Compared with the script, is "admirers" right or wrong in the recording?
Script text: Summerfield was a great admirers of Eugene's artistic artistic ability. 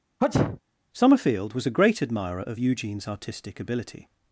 wrong